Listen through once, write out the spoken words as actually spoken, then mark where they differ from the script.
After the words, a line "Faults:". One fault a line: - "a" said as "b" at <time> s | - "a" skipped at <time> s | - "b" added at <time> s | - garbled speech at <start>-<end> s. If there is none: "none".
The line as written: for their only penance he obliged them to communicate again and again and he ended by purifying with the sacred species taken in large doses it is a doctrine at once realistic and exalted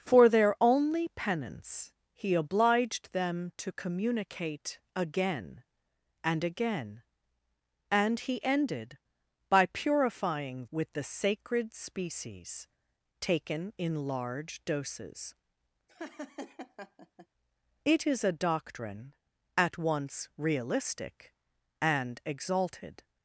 for their only penance he obliged them to communicate again and again and he ended by purifying with the sacred species taken in large doses it is a doctrine at once realistic and exalted
Faults:
none